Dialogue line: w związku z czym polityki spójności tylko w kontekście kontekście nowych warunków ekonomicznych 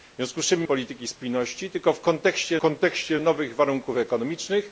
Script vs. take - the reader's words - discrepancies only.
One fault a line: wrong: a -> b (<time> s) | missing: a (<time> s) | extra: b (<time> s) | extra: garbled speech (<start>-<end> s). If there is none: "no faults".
no faults